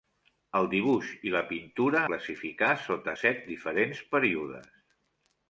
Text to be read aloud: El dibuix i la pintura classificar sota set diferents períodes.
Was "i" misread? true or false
false